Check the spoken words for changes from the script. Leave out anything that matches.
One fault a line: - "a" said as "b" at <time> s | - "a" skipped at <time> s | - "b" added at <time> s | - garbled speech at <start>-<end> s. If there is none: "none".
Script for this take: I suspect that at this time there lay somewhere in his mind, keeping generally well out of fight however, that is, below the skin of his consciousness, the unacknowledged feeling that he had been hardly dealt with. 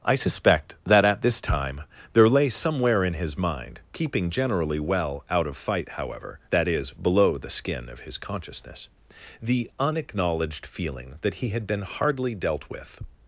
none